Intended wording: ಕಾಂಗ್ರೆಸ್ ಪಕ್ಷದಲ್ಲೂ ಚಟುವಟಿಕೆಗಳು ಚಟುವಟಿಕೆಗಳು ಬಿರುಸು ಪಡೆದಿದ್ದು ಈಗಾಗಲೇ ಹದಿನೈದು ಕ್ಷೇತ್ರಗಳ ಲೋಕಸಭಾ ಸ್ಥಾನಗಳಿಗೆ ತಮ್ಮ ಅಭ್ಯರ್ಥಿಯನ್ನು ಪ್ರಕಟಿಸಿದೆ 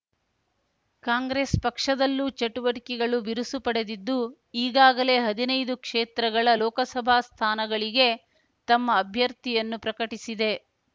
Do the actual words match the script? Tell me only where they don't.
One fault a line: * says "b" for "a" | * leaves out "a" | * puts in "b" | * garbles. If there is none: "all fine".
* leaves out "ಚಟುವಟಿಕೆಗಳು"